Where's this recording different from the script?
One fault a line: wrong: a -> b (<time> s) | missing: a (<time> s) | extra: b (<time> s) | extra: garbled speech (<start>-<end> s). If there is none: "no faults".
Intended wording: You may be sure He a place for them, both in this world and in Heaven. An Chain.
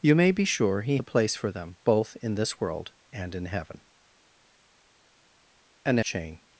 no faults